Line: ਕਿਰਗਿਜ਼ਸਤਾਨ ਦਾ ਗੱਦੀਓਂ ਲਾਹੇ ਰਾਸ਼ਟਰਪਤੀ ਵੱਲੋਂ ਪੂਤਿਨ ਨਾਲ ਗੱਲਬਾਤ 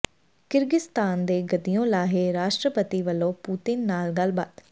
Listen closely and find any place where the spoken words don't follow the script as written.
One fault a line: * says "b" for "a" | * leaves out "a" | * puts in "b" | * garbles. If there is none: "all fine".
* says "ਦੇ" for "ਦਾ"